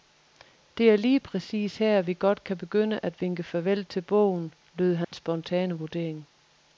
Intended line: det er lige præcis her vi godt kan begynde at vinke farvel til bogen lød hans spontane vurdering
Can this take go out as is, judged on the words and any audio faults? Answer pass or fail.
fail